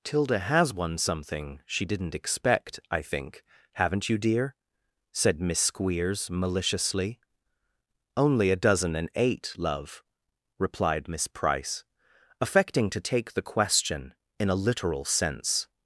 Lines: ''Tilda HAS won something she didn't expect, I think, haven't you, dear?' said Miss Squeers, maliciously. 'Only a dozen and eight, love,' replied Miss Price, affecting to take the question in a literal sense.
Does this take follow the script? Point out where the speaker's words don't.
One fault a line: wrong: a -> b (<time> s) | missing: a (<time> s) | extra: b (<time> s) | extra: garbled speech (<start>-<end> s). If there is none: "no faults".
no faults